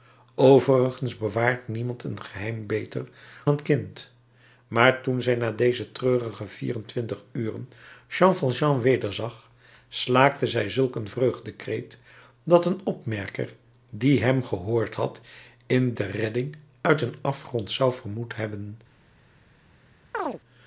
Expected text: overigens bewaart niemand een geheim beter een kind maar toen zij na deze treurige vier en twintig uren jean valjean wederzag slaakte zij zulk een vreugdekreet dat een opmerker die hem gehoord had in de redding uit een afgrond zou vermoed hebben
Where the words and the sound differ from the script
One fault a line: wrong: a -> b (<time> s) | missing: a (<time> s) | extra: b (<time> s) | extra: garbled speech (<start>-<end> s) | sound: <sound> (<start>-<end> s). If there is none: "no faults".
sound: chirp (20.1-20.4 s)